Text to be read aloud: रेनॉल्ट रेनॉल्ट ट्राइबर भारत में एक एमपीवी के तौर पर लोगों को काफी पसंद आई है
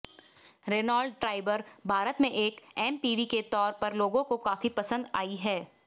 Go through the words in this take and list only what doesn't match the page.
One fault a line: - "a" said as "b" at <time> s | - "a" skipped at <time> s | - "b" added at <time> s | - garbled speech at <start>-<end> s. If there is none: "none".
- "रेनॉल्ट" skipped at 1.2 s